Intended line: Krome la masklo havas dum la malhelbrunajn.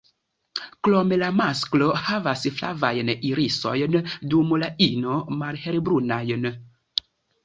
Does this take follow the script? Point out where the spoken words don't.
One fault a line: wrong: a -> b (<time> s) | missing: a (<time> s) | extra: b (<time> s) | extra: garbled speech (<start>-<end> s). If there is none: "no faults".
extra: flavajn irisojn (2.6 s)
extra: ino (4.9 s)